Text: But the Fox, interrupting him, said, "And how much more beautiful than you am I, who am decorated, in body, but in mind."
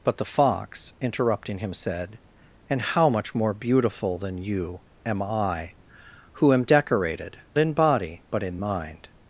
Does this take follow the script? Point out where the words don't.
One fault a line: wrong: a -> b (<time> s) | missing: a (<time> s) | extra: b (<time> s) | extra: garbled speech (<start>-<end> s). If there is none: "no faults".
no faults